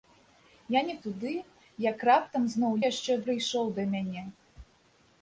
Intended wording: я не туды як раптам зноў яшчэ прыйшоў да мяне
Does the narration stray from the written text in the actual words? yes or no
no